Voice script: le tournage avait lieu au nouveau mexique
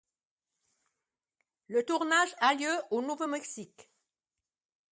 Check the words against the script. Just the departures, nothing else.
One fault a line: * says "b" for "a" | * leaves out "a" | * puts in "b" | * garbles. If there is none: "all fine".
* says "a" for "avait"